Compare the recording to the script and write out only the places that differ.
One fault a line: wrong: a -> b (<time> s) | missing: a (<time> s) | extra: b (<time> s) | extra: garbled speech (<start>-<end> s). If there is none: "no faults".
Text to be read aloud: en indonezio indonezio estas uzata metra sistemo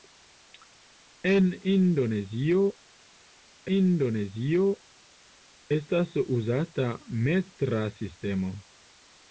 no faults